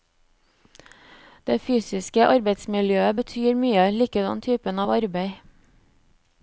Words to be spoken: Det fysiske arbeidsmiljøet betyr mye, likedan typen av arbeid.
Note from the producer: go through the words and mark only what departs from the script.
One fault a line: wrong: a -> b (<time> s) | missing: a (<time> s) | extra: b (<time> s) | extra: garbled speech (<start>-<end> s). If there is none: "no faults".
no faults